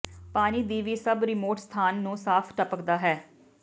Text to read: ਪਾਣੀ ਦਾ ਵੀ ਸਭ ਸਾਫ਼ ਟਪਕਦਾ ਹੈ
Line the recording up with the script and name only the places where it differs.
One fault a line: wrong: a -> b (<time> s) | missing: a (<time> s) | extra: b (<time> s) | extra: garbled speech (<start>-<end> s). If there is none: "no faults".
wrong: ਦਾ -> ਦੀ (0.6 s)
extra: ਰਿਮੋਟ ਸਥਾਨ ਨੂੰ (1.2 s)